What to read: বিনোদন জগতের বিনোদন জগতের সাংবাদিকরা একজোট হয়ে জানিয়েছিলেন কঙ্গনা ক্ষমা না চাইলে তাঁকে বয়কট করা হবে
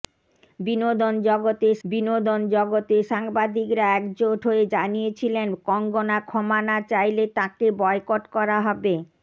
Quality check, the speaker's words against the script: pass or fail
pass